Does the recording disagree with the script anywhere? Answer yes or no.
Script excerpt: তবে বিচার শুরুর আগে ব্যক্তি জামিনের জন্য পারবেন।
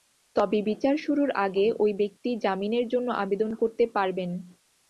yes